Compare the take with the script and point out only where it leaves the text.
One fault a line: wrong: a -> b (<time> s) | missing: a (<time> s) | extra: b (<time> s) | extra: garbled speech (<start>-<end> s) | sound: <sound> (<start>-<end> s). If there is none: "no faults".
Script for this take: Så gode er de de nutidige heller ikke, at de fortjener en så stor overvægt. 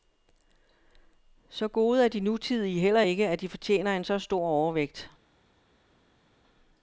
missing: de (2.2 s)